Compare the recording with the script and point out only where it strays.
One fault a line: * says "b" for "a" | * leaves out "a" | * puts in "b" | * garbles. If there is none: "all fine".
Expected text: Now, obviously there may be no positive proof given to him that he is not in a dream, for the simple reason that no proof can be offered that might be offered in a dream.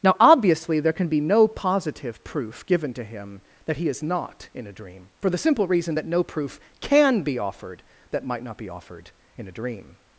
* says "can" for "may"
* puts in "not"